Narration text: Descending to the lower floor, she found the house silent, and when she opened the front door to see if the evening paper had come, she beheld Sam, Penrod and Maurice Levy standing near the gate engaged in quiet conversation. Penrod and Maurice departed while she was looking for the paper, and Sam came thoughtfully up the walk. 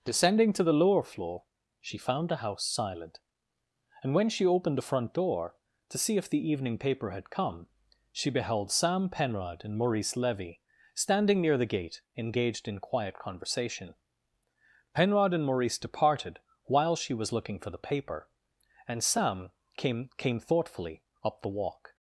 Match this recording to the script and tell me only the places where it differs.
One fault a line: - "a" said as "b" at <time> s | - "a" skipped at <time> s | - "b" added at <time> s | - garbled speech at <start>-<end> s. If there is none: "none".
- "came" added at 20.2 s